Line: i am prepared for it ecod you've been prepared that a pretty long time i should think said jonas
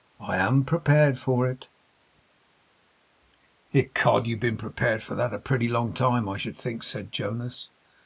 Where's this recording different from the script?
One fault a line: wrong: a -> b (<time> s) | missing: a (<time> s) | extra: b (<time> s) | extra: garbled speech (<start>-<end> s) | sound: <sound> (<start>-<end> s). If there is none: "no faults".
extra: for (5.0 s)